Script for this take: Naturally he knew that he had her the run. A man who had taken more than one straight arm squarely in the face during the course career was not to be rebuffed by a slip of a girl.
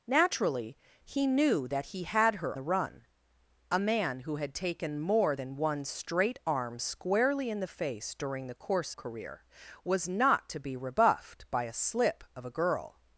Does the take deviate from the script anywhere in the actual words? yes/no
no